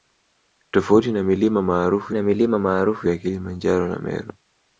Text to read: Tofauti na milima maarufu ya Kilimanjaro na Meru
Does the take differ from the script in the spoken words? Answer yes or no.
yes